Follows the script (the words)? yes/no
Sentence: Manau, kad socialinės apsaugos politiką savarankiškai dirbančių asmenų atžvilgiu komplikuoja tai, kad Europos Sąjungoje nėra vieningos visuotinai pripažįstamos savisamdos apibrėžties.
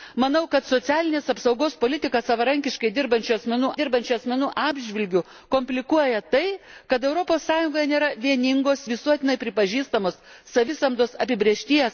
no